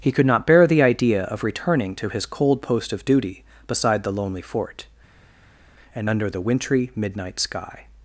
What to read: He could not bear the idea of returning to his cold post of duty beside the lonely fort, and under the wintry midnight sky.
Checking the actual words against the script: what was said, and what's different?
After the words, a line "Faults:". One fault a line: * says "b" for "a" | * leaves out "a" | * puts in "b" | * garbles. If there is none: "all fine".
He could not bear the idea of returning to his cold post of duty beside the lonely fort, and under the wintry midnight sky.
Faults:
all fine